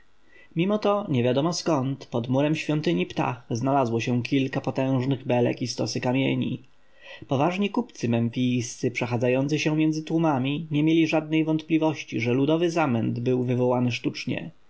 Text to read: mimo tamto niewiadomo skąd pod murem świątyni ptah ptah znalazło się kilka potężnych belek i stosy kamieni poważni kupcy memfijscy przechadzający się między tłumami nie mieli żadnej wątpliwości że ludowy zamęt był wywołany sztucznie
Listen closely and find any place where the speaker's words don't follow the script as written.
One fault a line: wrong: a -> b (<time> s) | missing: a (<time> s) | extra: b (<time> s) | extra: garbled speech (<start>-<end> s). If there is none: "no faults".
wrong: tamto -> to (0.8 s)
missing: ptah (3.5 s)